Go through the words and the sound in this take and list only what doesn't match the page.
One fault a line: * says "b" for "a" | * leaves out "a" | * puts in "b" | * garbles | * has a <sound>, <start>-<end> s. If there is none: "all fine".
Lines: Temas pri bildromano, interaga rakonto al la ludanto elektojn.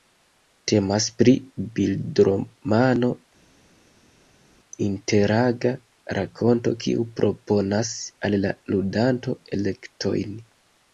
* puts in "kiu proponas"